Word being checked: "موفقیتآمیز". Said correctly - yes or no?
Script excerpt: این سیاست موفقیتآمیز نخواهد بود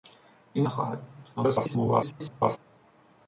no